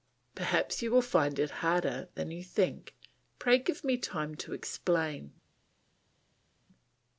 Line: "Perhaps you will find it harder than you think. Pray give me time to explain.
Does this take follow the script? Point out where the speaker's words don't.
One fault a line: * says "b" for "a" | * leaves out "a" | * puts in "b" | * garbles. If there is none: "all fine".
all fine